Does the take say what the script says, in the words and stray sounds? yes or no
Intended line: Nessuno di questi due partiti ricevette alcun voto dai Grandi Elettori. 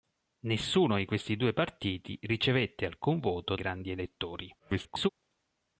no